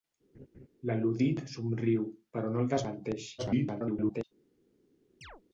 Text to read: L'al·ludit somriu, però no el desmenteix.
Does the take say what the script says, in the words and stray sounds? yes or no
no